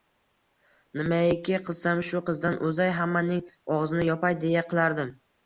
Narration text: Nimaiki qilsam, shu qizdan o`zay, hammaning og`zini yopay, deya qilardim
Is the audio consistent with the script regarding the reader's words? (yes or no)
yes